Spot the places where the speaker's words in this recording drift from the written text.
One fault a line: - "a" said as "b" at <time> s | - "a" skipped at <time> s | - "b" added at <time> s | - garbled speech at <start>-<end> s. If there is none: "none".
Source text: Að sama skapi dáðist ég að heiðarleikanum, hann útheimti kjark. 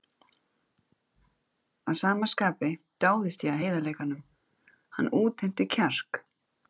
none